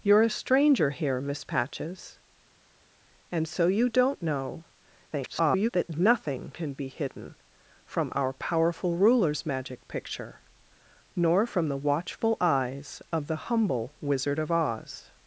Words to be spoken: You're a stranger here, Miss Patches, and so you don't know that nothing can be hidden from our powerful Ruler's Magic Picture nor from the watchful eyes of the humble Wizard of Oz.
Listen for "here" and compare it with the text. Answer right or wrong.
right